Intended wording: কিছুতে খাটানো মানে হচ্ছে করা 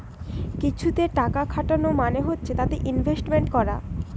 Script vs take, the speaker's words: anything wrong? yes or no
yes